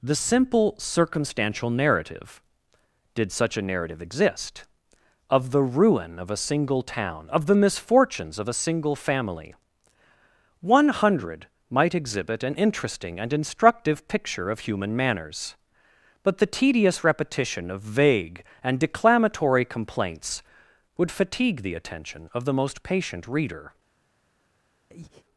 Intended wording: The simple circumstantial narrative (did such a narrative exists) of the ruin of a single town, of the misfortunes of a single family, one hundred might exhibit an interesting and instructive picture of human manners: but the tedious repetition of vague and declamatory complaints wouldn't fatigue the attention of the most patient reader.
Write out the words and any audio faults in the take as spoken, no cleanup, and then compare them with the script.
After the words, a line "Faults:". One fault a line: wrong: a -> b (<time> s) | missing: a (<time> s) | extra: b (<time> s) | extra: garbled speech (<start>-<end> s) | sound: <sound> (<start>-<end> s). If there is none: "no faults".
The simple circumstantial narrative (did such a narrative exist) of the ruin of a single town, of the misfortunes of a single family, one hundred might exhibit an interesting and instructive picture of human manners: but the tedious repetition of vague and declamatory complaints would fatigue the attention of the most patient reader.
Faults:
wrong: exists -> exist (4.0 s)
wrong: wouldn't -> would (21.0 s)
sound: breath (24.9-25.3 s)